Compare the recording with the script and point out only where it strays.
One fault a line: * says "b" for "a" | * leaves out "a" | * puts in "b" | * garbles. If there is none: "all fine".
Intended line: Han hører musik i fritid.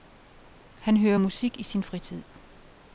* puts in "sin"